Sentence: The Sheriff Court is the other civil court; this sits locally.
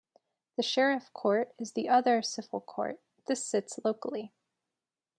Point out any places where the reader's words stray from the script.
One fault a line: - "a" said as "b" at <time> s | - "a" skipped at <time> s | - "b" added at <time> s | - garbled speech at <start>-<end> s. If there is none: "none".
none